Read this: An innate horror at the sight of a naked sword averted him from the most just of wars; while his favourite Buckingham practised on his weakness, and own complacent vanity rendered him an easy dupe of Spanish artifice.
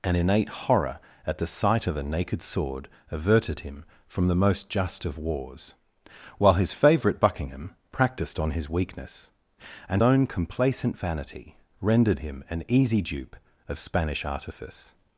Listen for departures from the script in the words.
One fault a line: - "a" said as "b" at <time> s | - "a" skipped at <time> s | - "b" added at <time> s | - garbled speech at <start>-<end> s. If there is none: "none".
none